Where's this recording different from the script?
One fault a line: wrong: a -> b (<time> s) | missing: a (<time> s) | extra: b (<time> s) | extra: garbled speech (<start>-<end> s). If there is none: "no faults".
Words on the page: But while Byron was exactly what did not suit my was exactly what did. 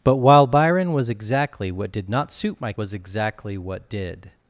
no faults